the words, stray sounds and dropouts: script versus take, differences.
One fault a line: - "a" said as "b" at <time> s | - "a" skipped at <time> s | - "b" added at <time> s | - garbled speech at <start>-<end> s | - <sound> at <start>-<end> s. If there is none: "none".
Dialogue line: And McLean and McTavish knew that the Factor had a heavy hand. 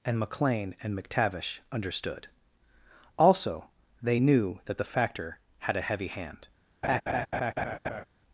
- "understood Also they" added at 1.7 s
- laugh at 6.8-8.0 s